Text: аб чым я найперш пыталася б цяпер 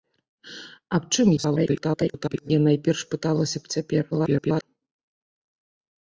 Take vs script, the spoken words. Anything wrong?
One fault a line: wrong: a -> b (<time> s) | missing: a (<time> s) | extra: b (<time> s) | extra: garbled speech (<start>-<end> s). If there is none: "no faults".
extra: garbled speech (1.4-2.5 s)
extra: garbled speech (4.1-4.6 s)